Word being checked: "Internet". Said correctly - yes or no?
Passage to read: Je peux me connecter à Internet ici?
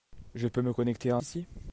no